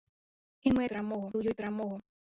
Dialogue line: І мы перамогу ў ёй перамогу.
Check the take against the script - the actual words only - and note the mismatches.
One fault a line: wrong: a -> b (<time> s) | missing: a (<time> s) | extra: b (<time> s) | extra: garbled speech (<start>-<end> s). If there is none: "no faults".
no faults